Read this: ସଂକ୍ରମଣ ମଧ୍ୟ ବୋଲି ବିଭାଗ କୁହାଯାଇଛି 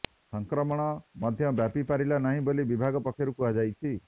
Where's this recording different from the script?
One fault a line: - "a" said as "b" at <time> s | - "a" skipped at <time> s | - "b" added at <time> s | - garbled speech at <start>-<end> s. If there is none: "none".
- "ବ୍ୟାପି ପାରିଲା ନାହିଁ" added at 1.5 s
- "ପକ୍ଷରୁ" added at 3.0 s